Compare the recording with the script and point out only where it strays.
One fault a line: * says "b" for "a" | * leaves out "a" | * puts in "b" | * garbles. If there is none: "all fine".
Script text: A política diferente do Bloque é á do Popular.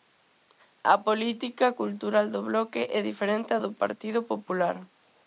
* says "cultural" for "diferente"
* puts in "diferente"
* puts in "Partido"